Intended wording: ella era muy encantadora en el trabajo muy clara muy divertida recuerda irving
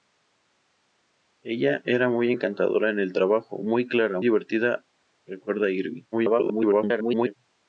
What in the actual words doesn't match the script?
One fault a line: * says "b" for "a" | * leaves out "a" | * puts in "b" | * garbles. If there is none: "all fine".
* leaves out "muy"
* garbles